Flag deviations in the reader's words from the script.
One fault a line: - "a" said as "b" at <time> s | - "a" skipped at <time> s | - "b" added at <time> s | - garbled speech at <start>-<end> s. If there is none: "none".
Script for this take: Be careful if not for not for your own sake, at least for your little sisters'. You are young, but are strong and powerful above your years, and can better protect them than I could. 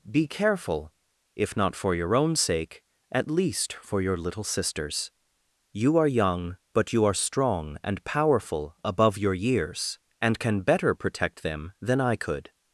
- "not for" skipped at 2.0 s
- "you" added at 6.9 s